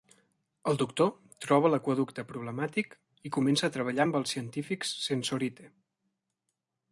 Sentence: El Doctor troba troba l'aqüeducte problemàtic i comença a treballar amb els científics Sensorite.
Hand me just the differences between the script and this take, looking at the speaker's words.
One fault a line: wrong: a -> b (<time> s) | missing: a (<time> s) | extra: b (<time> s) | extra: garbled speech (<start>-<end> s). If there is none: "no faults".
missing: troba (1.7 s)